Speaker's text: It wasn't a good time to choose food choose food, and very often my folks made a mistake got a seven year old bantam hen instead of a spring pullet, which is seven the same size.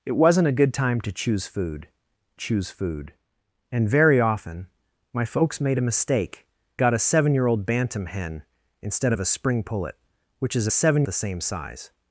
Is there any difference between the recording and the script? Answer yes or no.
no